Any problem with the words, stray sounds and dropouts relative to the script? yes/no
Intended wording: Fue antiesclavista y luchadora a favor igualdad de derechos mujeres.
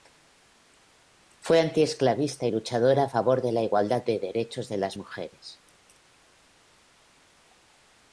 yes